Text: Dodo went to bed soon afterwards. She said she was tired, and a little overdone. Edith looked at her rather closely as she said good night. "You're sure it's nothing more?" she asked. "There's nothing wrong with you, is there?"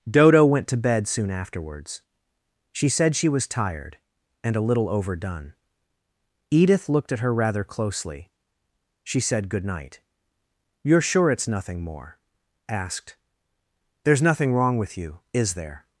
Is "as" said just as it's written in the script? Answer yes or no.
no